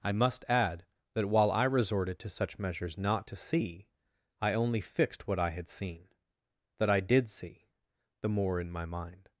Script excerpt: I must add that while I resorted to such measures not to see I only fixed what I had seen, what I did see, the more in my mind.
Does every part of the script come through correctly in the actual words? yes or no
no